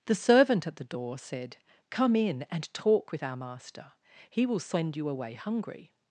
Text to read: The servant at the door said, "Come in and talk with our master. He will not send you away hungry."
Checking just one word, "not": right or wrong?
wrong